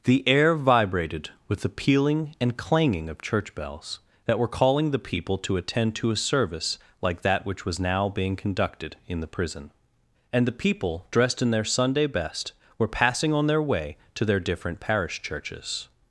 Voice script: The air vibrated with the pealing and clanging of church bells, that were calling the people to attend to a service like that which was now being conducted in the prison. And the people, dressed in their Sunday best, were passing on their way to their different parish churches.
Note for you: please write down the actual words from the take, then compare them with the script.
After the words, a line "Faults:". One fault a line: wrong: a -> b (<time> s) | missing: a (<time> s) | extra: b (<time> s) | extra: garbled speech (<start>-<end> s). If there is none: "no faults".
The air vibrated with the pealing and clanging of church bells, that were calling the people to attend to a service like that which was now being conducted in the prison. And the people, dressed in their Sunday best, were passing on their way to their different parish churches.
Faults:
no faults